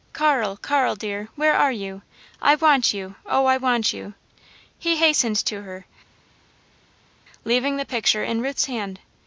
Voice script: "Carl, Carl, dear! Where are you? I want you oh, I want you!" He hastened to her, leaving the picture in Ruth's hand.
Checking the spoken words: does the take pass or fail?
pass